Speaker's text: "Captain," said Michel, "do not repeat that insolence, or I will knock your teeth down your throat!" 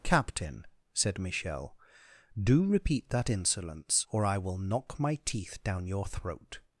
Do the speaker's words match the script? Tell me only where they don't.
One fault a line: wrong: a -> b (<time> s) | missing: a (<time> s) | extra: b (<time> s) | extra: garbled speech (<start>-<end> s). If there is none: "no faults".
missing: not (2.6 s)
wrong: your -> my (5.0 s)